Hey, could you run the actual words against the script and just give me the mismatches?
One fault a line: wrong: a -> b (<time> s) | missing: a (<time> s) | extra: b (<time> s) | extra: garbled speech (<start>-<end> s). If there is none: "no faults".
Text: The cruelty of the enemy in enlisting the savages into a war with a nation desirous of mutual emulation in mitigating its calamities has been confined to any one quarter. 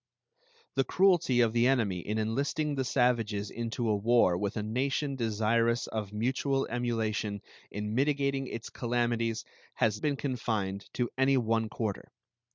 no faults